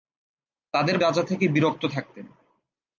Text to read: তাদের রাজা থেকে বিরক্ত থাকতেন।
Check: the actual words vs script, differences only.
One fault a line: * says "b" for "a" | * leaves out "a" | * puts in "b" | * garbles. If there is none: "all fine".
all fine